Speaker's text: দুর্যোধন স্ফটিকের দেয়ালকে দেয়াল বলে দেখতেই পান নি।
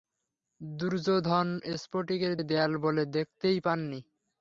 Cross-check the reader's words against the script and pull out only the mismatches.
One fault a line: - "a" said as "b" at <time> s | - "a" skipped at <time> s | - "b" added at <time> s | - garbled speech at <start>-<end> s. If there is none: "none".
- "দেয়ালকে" skipped at 2.3 s